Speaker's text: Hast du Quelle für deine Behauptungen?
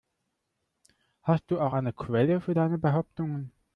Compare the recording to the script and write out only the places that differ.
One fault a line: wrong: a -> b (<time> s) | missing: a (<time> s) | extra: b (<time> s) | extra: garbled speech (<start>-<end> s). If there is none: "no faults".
extra: auch eine (1.6 s)